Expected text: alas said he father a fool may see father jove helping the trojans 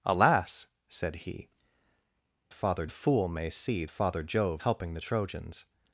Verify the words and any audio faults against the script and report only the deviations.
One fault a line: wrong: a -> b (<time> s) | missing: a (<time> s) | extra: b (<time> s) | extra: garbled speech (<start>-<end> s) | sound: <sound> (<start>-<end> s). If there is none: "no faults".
no faults